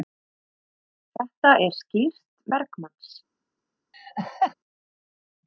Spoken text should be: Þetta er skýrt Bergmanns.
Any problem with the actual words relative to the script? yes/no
no